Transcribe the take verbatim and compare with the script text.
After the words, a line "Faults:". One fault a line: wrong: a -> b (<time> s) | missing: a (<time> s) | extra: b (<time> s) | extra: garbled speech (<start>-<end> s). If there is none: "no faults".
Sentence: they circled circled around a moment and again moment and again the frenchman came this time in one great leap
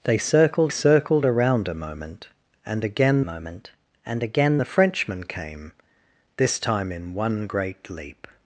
they circled circled around a moment and again moment and again the frenchman came this time in one great leap
Faults:
no faults